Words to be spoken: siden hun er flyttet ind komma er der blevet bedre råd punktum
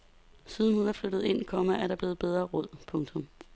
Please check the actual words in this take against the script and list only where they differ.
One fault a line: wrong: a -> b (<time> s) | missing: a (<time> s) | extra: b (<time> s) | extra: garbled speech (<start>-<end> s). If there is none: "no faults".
no faults